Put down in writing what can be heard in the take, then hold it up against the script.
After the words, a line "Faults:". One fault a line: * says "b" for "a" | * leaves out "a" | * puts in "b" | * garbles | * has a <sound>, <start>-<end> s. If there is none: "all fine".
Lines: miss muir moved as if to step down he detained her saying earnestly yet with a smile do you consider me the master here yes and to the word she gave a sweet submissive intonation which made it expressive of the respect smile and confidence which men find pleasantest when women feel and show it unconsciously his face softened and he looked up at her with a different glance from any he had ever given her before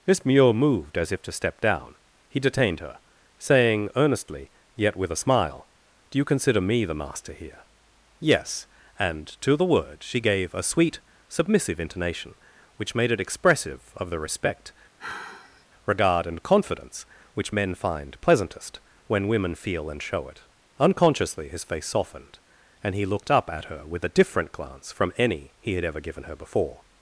miss muir moved as if to step down he detained her saying earnestly yet with a smile do you consider me the master here yes and to the word she gave a sweet submissive intonation which made it expressive of the respect regard and confidence which men find pleasantest when women feel and show it unconsciously his face softened and he looked up at her with a different glance from any he had ever given her before
Faults:
* has a sigh, 15.0-15.7 s
* says "regard" for "smile"